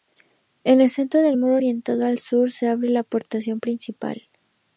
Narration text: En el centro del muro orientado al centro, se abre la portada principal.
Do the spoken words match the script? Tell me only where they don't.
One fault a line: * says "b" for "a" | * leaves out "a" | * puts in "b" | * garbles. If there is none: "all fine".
* says "sur" for "centro"